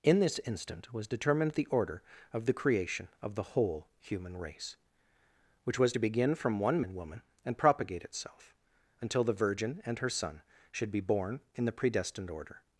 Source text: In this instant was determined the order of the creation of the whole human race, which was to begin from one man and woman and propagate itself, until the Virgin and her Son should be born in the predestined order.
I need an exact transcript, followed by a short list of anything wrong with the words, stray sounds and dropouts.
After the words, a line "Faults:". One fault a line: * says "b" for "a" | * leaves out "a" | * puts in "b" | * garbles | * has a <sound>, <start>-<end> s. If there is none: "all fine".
In this instant was determined the order of the creation of the whole human race, which was to begin from one and woman and propagate itself, until the Virgin and her Son should be born in the predestined order.
Faults:
* leaves out "man"